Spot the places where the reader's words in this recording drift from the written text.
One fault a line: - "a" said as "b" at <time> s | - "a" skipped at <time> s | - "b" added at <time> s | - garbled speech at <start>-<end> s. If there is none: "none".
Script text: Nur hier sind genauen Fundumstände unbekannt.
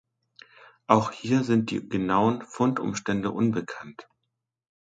- "Nur" said as "Auch" at 0.9 s
- "die" added at 1.7 s